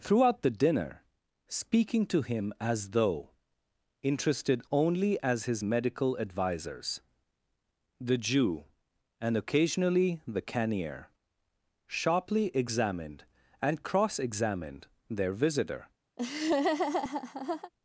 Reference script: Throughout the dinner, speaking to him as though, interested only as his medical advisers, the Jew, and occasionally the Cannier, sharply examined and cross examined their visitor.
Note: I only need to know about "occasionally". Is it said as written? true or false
true